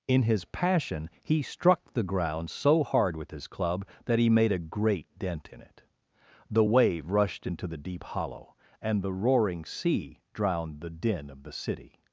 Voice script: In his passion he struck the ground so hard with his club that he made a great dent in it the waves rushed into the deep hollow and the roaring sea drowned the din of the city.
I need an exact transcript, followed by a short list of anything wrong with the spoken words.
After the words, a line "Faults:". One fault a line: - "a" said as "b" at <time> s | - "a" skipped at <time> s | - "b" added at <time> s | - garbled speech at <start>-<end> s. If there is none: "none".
In his passion he struck the ground so hard with his club that he made a great dent in it the wave rushed into the deep hollow and the roaring sea drowned the din of the city.
Faults:
- "waves" said as "wave" at 6.6 s